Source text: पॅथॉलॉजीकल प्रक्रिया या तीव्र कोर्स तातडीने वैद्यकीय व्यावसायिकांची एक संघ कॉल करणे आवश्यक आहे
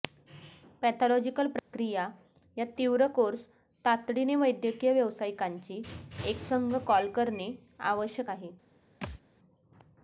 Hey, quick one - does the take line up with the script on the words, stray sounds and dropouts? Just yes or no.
no